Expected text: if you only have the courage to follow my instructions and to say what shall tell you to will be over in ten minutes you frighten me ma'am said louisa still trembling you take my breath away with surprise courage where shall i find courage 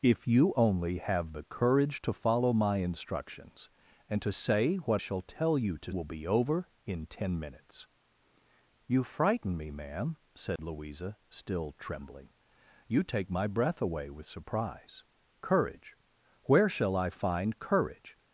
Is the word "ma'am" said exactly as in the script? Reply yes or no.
yes